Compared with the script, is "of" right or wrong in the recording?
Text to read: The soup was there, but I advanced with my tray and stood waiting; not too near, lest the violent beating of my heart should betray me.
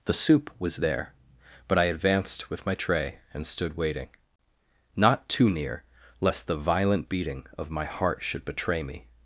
right